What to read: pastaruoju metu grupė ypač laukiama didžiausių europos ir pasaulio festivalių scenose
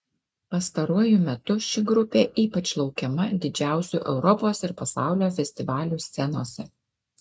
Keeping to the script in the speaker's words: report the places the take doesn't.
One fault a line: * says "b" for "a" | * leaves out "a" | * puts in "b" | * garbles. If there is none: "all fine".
* puts in "ši"